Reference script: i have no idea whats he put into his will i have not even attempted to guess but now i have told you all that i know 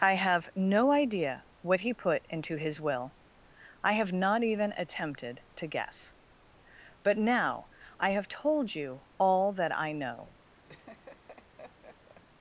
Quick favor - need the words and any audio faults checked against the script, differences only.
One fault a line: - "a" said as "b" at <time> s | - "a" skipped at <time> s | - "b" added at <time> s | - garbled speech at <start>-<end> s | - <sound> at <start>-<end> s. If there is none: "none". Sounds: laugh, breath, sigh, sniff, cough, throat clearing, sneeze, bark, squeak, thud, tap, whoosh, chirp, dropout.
- "whats" said as "what" at 1.6 s
- laugh at 10.7-12.2 s